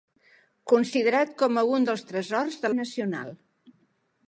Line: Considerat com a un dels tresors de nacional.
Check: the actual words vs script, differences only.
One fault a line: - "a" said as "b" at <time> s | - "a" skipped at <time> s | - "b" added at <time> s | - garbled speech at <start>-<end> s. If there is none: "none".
none